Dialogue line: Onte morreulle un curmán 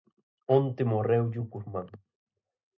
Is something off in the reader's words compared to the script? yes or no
no